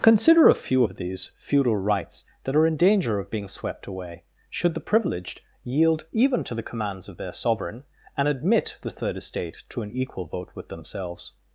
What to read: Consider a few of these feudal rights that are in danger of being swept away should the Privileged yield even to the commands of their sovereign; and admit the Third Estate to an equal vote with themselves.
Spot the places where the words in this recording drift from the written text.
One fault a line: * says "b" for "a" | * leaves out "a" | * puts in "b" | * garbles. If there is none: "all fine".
all fine